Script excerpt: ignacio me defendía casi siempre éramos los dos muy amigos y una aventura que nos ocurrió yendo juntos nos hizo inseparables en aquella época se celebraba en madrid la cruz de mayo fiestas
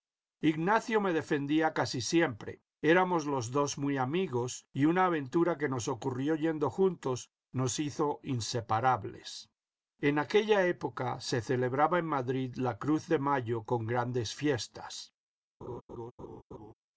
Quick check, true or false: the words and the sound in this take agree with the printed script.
false